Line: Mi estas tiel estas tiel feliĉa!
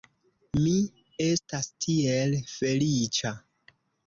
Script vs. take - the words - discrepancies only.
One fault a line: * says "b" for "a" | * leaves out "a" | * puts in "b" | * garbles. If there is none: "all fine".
* leaves out "estas tiel"